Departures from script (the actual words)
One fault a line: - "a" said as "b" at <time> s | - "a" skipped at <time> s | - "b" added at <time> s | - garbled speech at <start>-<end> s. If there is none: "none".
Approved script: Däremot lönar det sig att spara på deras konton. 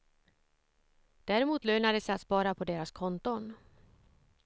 none